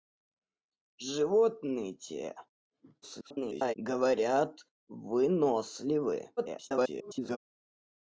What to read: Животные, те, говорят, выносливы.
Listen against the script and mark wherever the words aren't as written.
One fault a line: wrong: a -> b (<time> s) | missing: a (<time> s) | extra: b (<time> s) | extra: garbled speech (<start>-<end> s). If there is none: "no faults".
extra: garbled speech (3.0-3.7 s)
extra: garbled speech (6.4-7.4 s)